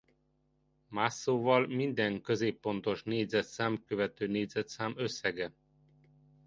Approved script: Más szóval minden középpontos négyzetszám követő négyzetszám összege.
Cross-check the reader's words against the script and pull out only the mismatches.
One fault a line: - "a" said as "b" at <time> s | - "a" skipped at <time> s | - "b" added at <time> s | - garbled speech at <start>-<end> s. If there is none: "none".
none